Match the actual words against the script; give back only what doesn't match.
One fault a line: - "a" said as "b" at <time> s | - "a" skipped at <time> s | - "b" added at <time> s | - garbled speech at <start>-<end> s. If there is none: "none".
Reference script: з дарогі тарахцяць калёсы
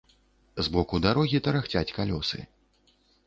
- "боку" added at 0.8 s